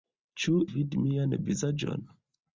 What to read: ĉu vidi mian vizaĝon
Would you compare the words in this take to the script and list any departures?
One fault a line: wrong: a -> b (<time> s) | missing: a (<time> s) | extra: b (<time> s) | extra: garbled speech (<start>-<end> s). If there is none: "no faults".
no faults